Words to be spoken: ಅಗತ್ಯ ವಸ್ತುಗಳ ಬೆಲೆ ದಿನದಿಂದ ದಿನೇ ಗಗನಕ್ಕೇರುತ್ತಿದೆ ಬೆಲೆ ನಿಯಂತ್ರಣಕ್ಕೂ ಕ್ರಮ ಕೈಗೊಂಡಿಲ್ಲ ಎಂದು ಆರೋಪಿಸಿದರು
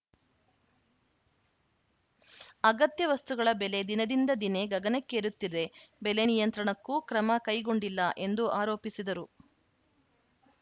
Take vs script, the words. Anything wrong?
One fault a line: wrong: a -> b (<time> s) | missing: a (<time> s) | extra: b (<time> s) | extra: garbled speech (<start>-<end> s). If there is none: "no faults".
no faults